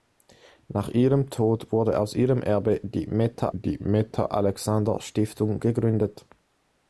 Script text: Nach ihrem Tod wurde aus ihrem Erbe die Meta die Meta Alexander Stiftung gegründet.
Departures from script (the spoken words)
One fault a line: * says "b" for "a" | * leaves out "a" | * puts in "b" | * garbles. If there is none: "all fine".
all fine